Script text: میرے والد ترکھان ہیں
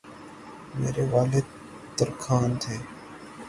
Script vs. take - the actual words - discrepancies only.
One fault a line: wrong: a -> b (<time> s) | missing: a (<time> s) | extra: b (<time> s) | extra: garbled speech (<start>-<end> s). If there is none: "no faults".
wrong: ہیں -> تھے (2.6 s)